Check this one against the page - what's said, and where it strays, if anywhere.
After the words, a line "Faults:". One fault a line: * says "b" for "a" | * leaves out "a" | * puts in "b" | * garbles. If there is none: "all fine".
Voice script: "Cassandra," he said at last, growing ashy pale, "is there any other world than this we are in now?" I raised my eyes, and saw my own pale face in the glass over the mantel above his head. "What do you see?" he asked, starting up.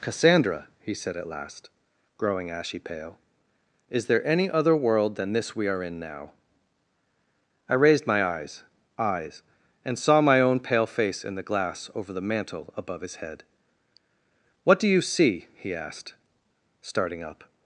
"Cassandra," he said at last, growing ashy pale, "is there any other world than this we are in now?" I raised my eyes eyes, and saw my own pale face in the glass over the mantel above his head. "What do you see?" he asked, starting up.
Faults:
* puts in "eyes"